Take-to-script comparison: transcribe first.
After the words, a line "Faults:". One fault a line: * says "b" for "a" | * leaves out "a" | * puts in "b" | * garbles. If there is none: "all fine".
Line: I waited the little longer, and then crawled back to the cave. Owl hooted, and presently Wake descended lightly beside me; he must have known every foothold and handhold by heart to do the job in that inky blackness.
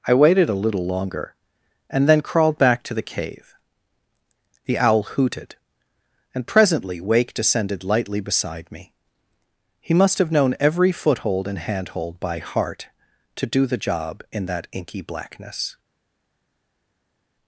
I waited a little longer, and then crawled back to the cave. The owl hooted, and presently Wake descended lightly beside me; he must have known every foothold and handhold by heart to do the job in that inky blackness.
Faults:
* says "a" for "the"
* puts in "The"